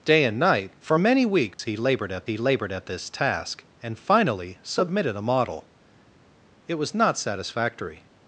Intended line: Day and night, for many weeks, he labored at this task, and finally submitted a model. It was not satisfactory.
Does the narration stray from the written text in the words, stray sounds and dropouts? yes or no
yes